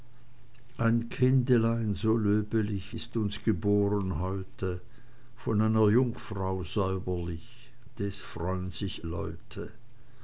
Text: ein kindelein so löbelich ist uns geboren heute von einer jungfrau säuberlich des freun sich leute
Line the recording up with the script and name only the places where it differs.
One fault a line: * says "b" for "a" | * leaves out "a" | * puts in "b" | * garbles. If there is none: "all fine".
all fine